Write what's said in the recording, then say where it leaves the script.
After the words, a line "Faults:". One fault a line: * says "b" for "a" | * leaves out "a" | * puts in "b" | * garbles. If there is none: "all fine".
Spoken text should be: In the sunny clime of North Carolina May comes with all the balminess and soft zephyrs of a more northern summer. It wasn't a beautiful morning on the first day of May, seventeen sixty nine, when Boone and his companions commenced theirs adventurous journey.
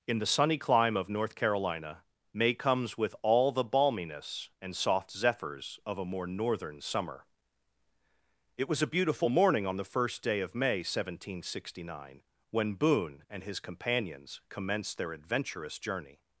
In the sunny clime of North Carolina May comes with all the balminess and soft zephyrs of a more northern summer. It was a beautiful morning on the first day of May, seventeen sixty nine, when Boone and his companions commenced their adventurous journey.
Faults:
* says "was" for "wasn't"
* says "their" for "theirs"